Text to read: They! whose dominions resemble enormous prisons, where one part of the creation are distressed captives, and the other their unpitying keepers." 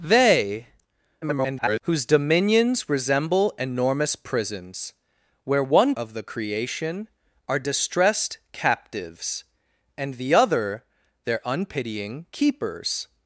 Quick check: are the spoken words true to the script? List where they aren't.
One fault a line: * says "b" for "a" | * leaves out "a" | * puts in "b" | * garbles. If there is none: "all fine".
* garbles
* leaves out "part"